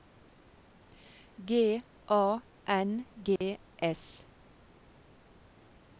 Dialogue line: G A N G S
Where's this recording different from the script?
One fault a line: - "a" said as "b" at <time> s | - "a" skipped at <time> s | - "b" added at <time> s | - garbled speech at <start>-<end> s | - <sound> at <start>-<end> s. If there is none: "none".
- dropout at 3.4-3.4 s